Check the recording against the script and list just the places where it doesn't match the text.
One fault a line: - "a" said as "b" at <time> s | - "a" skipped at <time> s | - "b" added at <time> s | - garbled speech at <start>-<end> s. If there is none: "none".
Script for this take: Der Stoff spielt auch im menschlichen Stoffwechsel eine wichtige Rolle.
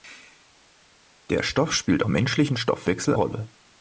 - "auch" skipped at 2.0 s
- "eine wichtige" skipped at 3.2 s